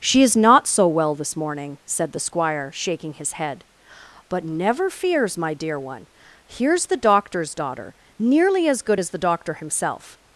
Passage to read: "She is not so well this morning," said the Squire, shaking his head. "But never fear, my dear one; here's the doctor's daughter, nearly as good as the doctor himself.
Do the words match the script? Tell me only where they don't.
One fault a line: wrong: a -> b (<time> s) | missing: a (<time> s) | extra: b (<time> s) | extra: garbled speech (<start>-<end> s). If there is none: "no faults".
wrong: fear -> fears (4.9 s)